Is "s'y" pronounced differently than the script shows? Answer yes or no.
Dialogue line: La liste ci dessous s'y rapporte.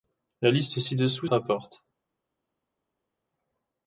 yes